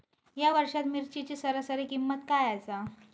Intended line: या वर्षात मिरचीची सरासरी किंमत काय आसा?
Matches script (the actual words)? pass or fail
pass